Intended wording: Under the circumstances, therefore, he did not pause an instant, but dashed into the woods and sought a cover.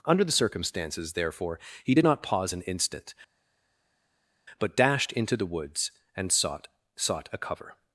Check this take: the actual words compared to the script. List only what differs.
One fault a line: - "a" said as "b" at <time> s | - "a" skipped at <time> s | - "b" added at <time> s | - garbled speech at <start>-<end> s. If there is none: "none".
- "sought" added at 7.0 s